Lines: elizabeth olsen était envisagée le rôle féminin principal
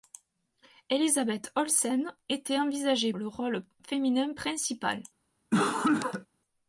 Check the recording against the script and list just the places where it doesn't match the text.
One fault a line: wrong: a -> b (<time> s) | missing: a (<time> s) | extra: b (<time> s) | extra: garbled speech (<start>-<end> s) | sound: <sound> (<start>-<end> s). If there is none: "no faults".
sound: cough (5.5-6.3 s)